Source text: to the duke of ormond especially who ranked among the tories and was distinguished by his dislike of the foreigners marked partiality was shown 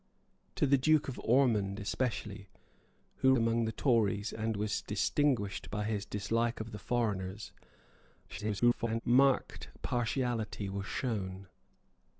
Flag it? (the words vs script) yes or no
yes